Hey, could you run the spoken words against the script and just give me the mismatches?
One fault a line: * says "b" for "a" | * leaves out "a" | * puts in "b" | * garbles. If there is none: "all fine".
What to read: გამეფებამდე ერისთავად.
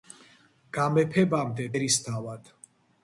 all fine